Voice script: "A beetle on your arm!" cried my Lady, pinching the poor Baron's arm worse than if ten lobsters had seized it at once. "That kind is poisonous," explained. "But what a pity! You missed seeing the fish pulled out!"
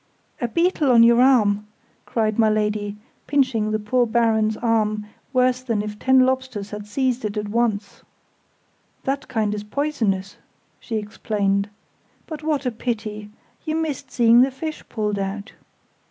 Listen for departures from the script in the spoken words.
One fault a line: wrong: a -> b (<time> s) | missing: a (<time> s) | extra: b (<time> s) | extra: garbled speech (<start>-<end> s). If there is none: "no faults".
extra: she (10.8 s)